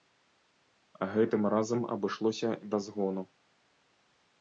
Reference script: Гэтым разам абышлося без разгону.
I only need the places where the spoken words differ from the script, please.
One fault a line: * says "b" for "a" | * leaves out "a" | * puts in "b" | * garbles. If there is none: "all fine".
* leaves out "без"